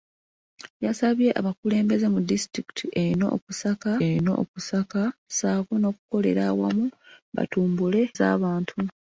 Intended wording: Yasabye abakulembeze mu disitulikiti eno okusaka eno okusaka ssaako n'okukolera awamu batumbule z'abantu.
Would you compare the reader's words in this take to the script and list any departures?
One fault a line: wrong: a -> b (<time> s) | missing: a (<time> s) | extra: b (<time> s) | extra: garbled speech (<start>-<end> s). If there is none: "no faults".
no faults